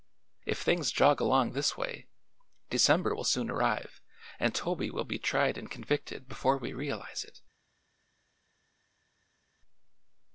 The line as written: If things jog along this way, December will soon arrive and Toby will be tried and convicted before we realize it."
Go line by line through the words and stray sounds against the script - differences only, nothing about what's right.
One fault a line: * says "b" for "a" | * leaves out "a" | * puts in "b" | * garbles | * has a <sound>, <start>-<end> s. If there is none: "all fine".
all fine